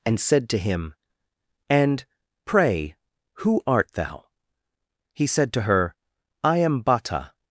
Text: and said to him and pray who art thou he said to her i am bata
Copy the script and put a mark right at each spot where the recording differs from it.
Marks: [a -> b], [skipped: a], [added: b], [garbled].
and said to him and pray who art thou he said to her i am bata